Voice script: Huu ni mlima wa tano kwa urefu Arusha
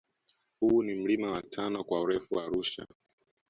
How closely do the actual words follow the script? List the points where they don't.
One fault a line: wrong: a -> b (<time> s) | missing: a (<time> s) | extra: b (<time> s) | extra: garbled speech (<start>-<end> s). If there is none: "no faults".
no faults